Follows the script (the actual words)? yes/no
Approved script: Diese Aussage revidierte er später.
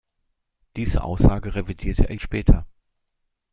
yes